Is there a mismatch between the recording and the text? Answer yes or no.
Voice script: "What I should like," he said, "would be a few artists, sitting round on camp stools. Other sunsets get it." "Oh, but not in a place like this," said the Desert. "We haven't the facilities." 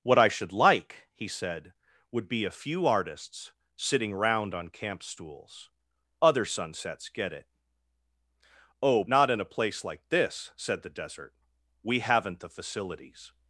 yes